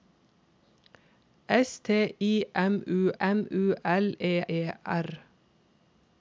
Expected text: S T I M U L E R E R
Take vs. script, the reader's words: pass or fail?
fail